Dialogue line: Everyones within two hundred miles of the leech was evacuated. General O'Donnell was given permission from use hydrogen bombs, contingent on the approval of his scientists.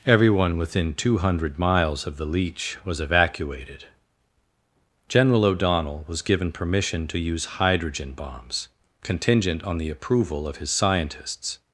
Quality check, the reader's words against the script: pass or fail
fail